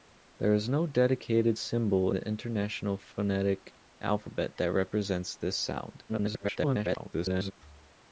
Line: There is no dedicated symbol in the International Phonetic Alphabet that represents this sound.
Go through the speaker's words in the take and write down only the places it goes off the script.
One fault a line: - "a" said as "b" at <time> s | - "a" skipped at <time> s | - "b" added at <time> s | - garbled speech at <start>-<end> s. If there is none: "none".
- "in" skipped at 2.1 s
- garbled speech at 6.1-7.5 s